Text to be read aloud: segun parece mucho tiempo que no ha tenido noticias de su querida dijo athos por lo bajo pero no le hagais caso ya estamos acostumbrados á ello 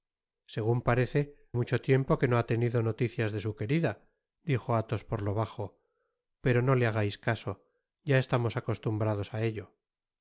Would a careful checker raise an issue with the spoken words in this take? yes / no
no